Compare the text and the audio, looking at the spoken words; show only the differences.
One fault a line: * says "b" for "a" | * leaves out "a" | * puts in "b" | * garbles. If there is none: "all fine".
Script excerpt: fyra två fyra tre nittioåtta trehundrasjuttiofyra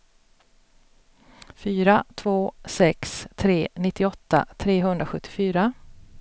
* says "sex" for "fyra"